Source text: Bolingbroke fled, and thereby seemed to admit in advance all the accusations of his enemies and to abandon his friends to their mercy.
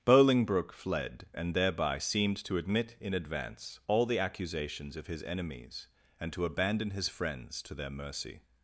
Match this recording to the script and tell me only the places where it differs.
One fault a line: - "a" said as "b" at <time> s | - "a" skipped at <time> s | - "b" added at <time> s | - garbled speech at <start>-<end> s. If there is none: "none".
none